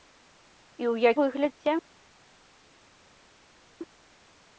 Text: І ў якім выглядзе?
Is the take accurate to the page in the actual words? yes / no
no